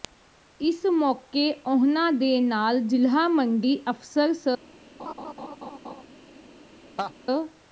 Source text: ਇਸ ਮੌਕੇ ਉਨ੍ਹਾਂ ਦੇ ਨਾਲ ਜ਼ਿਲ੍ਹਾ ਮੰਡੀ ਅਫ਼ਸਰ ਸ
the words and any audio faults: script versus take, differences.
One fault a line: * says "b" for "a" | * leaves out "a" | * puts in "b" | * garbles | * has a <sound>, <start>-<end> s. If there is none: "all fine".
* has a laugh, 5.0-6.0 s
* has a laugh, 7.0-7.1 s